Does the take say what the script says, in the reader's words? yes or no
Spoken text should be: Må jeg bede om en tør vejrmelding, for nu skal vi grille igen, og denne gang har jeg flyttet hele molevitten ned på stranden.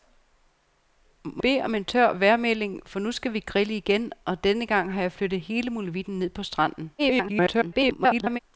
no